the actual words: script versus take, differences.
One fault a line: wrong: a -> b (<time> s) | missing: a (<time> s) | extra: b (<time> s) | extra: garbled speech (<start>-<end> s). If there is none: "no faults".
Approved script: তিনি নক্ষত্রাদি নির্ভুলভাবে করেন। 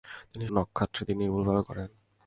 no faults